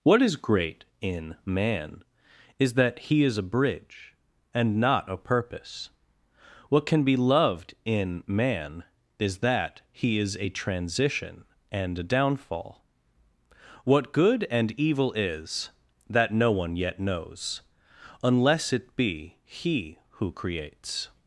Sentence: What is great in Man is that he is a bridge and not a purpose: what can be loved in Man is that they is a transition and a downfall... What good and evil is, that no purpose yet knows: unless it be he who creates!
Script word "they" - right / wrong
wrong